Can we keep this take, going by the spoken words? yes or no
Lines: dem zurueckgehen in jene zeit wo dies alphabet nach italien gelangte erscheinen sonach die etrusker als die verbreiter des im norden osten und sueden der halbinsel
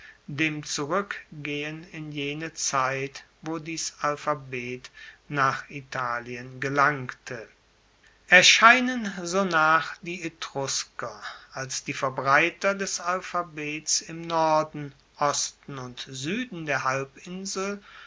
no